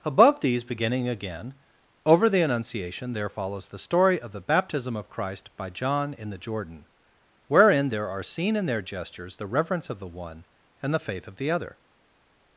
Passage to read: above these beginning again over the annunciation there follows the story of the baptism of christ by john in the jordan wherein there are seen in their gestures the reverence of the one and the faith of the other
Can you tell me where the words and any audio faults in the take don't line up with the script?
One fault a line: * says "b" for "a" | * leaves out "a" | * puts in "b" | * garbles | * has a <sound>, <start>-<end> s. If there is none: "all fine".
all fine